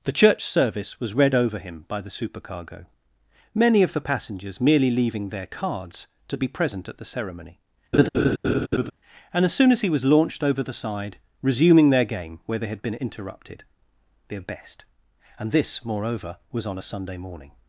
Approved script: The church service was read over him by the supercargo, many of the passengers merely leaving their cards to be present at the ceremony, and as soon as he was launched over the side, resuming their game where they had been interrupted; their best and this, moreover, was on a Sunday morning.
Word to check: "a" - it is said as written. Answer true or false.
true